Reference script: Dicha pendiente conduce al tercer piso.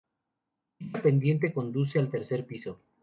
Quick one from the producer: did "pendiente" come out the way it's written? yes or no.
yes